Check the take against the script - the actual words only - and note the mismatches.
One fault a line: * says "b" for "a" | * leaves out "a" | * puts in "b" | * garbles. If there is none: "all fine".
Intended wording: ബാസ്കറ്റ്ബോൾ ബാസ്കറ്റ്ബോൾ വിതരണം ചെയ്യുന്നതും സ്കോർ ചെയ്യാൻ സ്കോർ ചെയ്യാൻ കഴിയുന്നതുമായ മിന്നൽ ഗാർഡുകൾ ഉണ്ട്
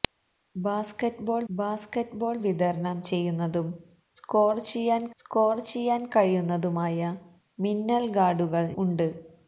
all fine